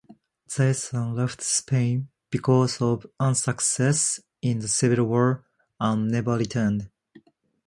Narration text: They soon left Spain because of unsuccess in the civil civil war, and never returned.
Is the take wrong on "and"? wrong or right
right